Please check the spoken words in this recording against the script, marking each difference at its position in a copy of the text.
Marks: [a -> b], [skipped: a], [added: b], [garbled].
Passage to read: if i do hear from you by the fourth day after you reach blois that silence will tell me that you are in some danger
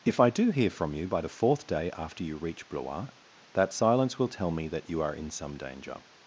if i do hear from you by the fourth day after you reach blois that silence will tell me that you are in some danger